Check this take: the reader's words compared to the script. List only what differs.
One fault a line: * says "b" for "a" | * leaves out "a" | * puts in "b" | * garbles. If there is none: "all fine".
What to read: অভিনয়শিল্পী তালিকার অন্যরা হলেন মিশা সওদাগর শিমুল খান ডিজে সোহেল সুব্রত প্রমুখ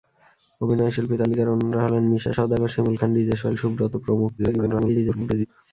* garbles